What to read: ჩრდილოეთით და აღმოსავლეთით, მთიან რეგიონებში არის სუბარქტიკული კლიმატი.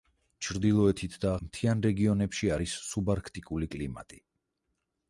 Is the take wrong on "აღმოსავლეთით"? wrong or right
wrong